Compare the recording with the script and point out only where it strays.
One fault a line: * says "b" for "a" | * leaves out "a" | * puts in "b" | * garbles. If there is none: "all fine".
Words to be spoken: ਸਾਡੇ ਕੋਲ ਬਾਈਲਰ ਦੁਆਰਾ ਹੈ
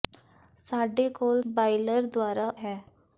all fine